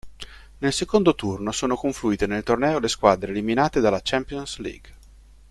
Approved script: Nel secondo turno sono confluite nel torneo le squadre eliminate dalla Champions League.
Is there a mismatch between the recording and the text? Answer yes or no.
no